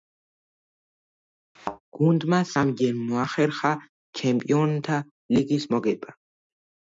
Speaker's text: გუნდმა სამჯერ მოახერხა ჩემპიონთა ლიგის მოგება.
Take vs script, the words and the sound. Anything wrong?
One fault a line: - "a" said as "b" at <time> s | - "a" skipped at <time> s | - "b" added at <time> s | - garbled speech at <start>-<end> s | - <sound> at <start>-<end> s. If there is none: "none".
- thud at 1.6-1.8 s